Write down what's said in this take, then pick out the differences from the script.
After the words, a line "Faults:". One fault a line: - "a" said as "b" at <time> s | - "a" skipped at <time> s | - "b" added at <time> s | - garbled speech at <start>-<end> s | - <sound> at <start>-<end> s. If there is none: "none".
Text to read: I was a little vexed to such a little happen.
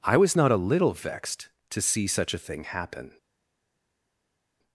I was not a little vexed to see such a thing happen.
Faults:
- "not" added at 0.3 s
- "see" added at 1.8 s
- "little" said as "thing" at 2.4 s